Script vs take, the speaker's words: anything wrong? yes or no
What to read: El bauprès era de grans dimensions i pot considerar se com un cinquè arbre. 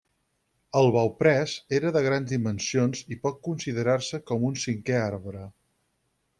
no